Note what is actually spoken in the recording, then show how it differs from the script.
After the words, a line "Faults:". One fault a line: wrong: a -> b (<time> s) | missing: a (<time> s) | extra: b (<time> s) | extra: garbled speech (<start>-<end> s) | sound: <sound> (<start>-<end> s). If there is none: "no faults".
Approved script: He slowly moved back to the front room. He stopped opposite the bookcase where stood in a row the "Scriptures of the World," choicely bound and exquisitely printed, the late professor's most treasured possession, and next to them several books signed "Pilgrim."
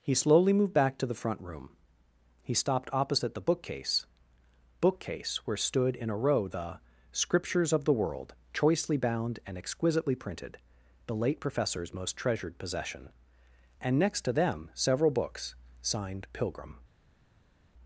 He slowly moved back to the front room. He stopped opposite the bookcase bookcase where stood in a row the "Scriptures of the World," choicely bound and exquisitely printed, the late professor's most treasured possession, and next to them several books signed "Pilgrim."
Faults:
extra: bookcase (4.8 s)